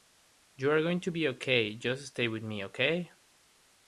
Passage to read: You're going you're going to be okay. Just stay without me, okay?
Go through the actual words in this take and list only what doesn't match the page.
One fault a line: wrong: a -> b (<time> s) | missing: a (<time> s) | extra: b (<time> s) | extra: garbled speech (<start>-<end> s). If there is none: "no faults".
missing: you're going (1.0 s)
wrong: without -> with (2.3 s)